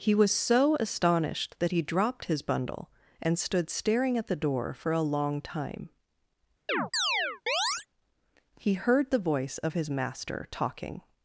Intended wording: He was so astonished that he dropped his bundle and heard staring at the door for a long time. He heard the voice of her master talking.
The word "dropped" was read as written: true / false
true